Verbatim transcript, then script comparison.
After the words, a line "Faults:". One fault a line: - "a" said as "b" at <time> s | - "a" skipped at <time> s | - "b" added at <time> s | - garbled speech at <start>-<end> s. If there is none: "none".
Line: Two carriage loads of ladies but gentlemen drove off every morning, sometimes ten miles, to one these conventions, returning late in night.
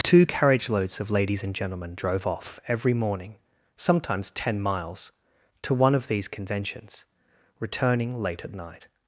Two carriage loads of ladies and gentlemen drove off every morning, sometimes ten miles, to one of these conventions, returning late at night.
Faults:
- "but" said as "and" at 1.4 s
- "of" added at 5.9 s
- "in" said as "at" at 8.4 s